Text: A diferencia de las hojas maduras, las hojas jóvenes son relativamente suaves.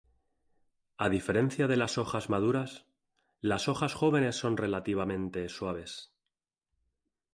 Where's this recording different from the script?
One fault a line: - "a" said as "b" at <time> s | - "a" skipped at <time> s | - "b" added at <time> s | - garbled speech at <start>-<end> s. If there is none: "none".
none